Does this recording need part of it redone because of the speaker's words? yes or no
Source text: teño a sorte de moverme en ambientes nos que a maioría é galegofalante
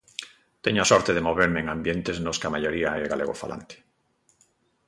no